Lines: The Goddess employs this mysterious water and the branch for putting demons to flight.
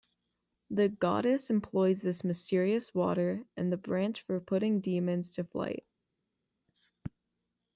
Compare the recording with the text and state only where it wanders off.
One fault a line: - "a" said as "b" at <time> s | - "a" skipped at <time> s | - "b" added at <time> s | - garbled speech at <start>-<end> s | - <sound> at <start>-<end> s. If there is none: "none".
none